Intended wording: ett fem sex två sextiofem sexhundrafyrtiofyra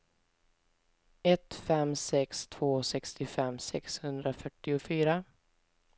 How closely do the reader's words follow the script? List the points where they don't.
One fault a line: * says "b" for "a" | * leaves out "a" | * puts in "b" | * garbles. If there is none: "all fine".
all fine